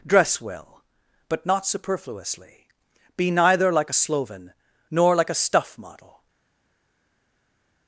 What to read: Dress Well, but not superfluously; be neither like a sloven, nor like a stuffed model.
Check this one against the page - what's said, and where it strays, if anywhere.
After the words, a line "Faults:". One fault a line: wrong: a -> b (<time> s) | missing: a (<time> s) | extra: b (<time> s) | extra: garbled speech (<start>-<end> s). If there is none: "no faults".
Dress Well, but not superfluously; be neither like a sloven, nor like a stuff model.
Faults:
wrong: stuffed -> stuff (5.3 s)